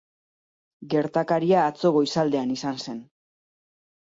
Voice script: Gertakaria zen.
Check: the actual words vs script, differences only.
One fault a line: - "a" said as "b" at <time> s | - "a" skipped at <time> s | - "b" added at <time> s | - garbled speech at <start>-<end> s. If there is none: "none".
- "atzo goizaldean izan" added at 1.7 s